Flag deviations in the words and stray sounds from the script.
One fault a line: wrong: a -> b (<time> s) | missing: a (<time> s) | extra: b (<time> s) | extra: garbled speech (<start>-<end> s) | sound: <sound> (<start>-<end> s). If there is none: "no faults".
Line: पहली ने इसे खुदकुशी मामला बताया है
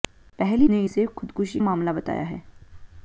no faults